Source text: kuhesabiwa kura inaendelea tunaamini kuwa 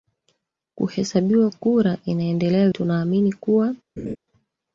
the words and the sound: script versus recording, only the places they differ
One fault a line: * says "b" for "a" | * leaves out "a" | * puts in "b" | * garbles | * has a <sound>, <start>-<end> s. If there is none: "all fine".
* has a laugh, 4.0-4.2 s